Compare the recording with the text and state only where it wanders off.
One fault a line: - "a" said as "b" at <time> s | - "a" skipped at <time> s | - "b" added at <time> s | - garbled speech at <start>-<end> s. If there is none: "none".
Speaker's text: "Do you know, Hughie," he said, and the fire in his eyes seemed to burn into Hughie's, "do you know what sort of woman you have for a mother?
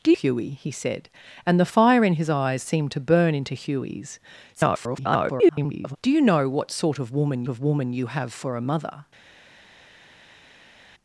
- "you know" skipped at 0.1 s
- garbled speech at 4.6-6.0 s
- "of woman" added at 7.5 s